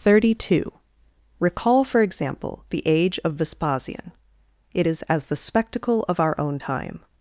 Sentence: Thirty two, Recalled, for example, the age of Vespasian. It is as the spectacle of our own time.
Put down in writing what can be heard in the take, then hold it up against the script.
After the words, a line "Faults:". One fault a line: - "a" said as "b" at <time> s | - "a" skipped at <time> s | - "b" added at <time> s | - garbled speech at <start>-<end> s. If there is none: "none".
Thirty two, Recall, for example, the age of Vespasian. It is as the spectacle of our own time.
Faults:
- "Recalled" said as "Recall" at 1.4 s